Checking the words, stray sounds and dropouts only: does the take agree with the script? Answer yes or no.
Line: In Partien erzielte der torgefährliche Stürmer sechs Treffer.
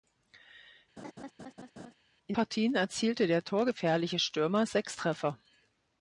no